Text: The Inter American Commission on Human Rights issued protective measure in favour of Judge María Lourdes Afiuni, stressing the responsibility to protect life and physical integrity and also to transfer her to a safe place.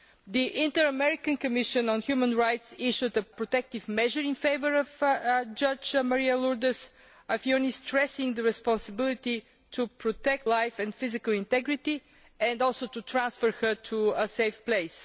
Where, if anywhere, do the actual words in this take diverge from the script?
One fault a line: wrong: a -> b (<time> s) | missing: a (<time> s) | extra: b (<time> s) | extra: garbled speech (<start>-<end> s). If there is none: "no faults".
no faults